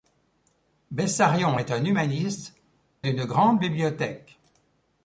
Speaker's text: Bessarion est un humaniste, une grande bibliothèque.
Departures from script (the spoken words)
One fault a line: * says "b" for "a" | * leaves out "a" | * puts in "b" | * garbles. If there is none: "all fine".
all fine